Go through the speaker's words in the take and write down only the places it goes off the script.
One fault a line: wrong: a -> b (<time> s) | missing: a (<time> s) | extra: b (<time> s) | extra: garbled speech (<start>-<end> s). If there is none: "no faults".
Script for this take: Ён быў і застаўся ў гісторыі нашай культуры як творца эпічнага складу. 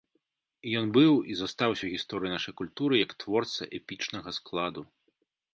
no faults